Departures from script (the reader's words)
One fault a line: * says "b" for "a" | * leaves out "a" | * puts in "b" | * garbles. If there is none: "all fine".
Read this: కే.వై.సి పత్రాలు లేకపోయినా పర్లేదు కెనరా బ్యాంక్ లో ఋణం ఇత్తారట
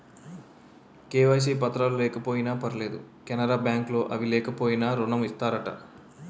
* puts in "అవి లేకపోయినా"